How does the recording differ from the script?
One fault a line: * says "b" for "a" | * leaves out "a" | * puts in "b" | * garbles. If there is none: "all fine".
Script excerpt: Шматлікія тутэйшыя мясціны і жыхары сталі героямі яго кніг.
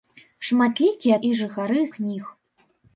* leaves out "тутэйшыя мясціны"
* leaves out "сталі героямі яго"